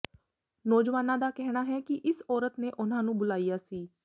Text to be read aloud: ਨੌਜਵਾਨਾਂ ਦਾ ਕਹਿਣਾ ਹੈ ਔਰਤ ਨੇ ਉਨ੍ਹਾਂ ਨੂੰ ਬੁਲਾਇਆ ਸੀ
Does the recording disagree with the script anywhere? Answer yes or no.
yes